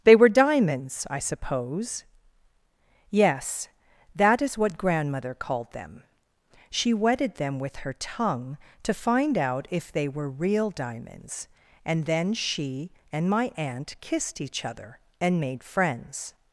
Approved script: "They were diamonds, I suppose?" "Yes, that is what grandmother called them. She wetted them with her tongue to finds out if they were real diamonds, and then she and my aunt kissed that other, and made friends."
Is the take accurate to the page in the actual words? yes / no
no